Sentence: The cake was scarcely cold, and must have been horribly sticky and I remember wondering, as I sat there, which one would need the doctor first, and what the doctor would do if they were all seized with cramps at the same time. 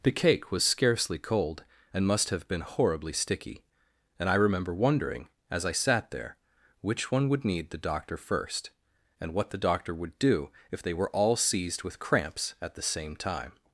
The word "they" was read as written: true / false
true